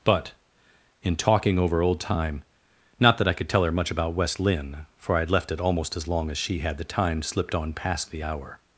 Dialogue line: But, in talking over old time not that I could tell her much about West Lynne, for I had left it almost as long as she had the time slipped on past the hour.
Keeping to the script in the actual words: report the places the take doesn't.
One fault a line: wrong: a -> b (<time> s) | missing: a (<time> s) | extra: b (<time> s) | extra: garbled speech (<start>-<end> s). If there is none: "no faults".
no faults